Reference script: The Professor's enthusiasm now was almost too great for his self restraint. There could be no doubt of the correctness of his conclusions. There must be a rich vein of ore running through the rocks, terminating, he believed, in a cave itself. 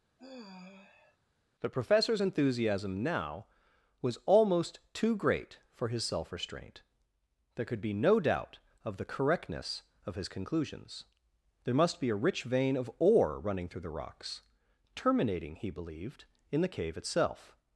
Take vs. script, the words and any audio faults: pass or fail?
fail